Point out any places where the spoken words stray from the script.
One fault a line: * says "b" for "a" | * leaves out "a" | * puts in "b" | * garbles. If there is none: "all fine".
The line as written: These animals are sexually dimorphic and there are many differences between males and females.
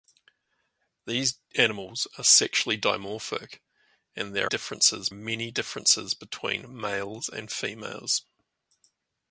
* says "differences" for "are"